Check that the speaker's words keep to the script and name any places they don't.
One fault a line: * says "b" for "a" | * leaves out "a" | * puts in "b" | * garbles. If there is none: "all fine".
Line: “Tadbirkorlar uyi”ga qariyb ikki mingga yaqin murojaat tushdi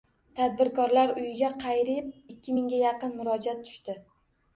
all fine